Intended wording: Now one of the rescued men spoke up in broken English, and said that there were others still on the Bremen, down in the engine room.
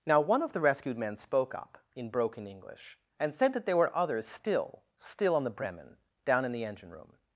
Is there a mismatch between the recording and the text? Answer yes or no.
yes